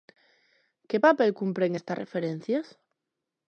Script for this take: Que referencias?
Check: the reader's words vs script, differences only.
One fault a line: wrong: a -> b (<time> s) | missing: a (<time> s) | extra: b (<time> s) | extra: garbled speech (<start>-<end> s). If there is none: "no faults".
extra: papel cumpren estas (1.0 s)